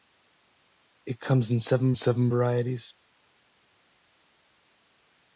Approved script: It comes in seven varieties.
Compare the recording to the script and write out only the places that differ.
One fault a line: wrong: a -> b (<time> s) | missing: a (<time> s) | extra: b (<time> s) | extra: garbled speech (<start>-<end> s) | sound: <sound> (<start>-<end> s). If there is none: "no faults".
extra: seven (1.9 s)